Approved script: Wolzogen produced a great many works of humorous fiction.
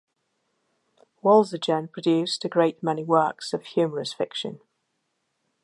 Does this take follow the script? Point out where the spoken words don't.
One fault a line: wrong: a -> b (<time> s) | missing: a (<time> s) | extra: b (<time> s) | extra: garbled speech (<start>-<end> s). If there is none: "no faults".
no faults